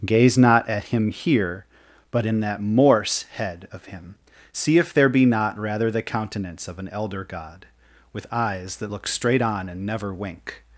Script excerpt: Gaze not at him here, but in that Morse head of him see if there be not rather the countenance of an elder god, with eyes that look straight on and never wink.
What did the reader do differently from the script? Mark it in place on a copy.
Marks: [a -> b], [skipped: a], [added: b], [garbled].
Gaze not at him here, but in that Morse head of him see if there be not rather the countenance of an elder god, with eyes that look straight on and never wink.